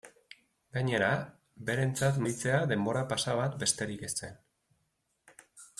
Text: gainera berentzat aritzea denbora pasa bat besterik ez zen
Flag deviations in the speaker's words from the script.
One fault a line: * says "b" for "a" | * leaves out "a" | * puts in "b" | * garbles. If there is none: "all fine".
all fine